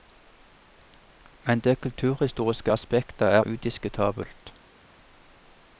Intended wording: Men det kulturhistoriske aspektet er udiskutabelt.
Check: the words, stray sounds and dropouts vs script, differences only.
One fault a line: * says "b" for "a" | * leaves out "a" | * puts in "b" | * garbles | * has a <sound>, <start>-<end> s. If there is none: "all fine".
all fine